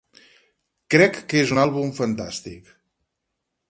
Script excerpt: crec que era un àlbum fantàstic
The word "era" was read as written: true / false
false